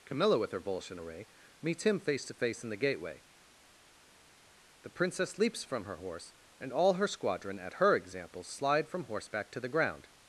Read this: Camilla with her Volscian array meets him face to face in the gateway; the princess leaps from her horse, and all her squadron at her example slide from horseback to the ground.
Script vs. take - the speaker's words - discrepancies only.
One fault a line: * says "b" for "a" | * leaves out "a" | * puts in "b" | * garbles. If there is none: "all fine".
all fine